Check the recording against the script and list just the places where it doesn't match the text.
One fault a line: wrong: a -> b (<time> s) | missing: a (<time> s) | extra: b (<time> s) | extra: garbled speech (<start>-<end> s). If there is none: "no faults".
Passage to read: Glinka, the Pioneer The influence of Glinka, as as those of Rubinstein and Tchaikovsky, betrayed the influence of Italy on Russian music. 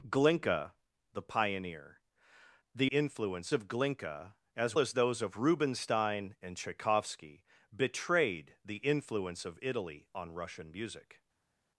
no faults